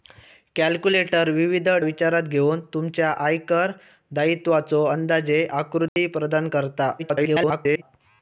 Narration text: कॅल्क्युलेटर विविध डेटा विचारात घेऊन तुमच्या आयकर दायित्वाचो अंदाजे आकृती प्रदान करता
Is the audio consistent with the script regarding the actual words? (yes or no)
no